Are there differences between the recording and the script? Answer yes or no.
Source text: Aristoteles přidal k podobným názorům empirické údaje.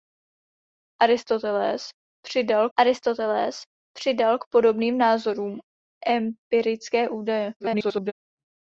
yes